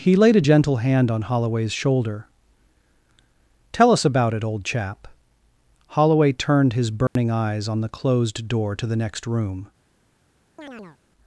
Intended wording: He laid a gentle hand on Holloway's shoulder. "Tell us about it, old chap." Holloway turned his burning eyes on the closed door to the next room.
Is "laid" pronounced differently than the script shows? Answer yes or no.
no